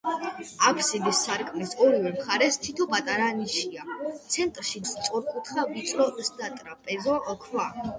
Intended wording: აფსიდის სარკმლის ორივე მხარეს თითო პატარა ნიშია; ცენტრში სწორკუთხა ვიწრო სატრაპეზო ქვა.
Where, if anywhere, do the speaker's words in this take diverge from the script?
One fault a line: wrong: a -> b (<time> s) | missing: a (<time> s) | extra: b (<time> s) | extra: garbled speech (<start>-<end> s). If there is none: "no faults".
no faults